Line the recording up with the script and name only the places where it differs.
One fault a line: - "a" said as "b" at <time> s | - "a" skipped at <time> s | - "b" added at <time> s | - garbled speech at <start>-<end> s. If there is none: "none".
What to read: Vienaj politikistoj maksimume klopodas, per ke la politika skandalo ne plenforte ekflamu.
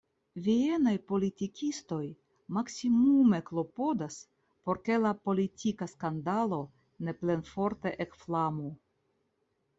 - "per" said as "por" at 4.7 s